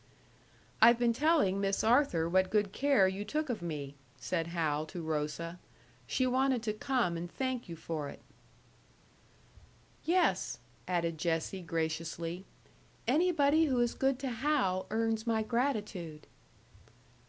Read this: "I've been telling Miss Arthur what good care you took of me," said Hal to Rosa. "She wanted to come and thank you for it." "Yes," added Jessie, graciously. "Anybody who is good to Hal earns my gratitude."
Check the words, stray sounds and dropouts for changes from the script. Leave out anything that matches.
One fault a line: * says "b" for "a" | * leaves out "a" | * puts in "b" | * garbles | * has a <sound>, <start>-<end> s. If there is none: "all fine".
all fine